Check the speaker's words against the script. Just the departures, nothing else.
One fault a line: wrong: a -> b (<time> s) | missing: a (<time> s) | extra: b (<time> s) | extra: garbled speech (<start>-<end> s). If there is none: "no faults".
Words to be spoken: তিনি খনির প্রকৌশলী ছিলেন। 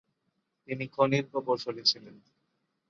no faults